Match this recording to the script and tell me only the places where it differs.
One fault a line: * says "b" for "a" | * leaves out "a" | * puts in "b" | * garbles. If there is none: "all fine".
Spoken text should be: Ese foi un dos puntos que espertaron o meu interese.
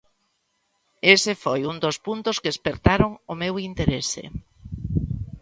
all fine